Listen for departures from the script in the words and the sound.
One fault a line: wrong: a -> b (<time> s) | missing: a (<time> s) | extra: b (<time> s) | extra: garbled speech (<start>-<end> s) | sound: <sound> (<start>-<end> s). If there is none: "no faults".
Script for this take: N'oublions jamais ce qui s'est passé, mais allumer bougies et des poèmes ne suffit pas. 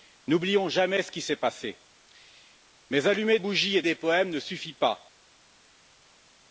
no faults